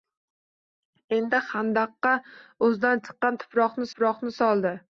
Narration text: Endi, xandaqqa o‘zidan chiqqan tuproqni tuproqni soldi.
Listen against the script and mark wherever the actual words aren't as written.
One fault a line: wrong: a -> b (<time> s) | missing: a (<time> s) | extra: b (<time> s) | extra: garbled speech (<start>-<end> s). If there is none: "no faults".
no faults